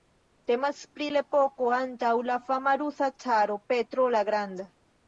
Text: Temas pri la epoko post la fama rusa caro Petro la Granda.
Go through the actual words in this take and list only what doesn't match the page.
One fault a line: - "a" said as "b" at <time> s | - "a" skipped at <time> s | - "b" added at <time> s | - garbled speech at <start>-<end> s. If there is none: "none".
- "post" said as "antaŭ" at 1.8 s